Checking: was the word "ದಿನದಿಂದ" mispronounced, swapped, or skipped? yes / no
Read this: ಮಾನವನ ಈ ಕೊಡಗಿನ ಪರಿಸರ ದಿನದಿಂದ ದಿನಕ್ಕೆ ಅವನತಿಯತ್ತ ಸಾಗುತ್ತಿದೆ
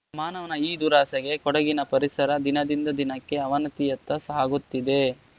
no